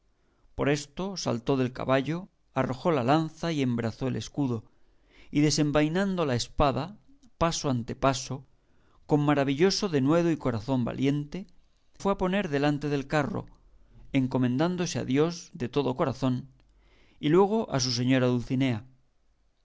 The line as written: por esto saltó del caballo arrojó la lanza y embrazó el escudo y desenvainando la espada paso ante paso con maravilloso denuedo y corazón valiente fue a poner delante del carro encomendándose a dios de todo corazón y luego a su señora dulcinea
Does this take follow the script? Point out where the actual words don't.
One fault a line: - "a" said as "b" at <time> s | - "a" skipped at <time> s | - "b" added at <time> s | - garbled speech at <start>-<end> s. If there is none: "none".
none